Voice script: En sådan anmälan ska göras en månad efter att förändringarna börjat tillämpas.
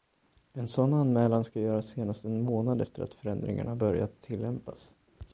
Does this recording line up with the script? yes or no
no